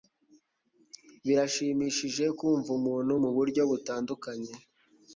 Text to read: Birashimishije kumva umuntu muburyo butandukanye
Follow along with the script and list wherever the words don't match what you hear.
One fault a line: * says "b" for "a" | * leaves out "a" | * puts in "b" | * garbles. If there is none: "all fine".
all fine